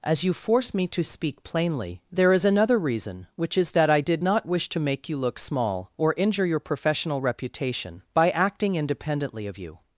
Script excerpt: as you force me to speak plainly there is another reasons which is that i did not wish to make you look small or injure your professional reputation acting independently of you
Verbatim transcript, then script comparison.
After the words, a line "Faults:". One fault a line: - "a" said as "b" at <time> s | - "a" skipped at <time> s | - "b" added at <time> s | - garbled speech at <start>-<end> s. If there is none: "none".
as you force me to speak plainly there is another reason which is that i did not wish to make you look small or injure your professional reputation by acting independently of you
Faults:
- "reasons" said as "reason" at 2.8 s
- "by" added at 8.1 s